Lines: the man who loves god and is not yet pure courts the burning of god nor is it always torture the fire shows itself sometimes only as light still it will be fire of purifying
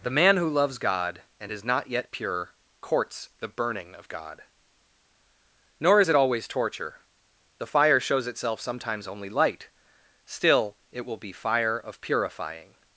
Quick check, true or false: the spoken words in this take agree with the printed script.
false